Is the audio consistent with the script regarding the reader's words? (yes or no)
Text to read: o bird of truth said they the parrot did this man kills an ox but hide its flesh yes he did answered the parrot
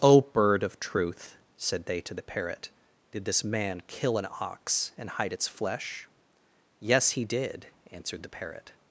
no